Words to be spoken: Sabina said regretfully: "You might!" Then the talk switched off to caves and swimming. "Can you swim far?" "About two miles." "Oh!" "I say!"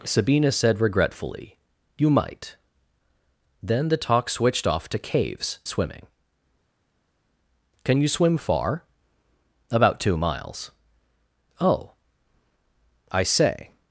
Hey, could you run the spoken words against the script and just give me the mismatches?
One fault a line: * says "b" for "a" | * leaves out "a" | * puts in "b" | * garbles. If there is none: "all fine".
* leaves out "and"